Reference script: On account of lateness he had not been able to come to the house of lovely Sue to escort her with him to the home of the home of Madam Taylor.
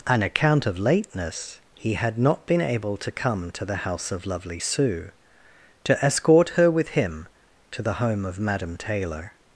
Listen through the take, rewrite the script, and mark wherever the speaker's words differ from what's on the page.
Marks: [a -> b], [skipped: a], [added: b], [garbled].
On account of lateness he had not been able to come to the house of lovely Sue to escort her with him to the home of [skipped: the home of] Madam Taylor.